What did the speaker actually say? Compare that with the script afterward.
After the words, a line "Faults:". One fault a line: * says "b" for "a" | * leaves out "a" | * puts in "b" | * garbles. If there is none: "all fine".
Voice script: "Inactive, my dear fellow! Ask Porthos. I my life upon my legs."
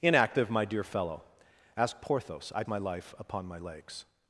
"Inactive, my dear fellow! Ask Porthos. I my life upon my legs."
Faults:
all fine